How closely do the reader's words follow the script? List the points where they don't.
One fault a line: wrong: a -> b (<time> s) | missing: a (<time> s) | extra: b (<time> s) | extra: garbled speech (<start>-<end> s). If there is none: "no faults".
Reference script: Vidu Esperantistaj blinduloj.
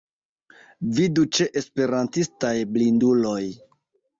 extra: ĉe (1.4 s)